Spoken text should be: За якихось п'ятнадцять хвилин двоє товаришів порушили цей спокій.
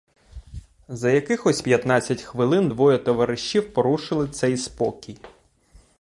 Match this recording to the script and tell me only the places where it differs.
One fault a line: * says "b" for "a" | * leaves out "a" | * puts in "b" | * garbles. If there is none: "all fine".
all fine